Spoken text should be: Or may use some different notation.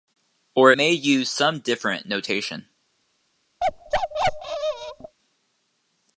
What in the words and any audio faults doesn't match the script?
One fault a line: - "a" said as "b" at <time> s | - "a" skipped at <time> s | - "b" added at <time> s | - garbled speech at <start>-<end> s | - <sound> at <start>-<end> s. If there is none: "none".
- bark at 3.6-5.2 s